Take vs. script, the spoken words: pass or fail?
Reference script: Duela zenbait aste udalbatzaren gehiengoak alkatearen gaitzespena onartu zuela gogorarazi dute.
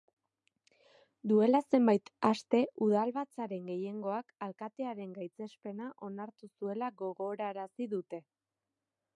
pass